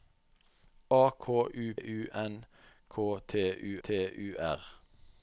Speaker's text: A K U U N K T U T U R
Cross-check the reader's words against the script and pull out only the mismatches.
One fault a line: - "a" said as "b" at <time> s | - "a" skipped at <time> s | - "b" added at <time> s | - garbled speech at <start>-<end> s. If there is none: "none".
none